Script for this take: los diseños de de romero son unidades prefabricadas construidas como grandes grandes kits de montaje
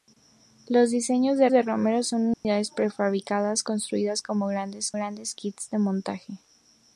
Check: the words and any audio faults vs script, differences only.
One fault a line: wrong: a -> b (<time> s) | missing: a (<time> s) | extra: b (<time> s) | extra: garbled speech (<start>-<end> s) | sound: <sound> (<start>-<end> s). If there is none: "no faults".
sound: dropout (2.3-2.5 s)